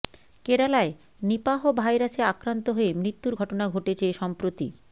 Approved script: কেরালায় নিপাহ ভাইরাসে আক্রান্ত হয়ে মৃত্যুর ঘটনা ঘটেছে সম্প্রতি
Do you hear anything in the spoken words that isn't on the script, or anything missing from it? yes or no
no